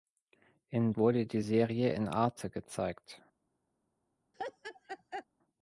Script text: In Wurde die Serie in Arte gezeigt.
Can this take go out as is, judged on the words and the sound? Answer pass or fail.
fail